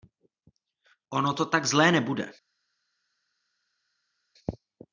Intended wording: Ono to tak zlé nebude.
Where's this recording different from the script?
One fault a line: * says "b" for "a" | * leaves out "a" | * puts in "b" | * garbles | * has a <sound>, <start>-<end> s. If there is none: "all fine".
all fine